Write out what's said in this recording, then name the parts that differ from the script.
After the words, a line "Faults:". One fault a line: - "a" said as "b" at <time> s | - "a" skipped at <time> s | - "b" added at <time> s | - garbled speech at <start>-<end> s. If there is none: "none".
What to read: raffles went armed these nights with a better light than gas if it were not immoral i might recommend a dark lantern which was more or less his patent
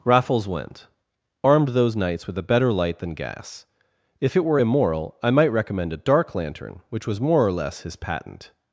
raffles went armed those nights with a better light than gas if it were immoral i might recommend a dark lantern which was more or less his patent
Faults:
- "these" said as "those" at 1.7 s
- "not" skipped at 4.6 s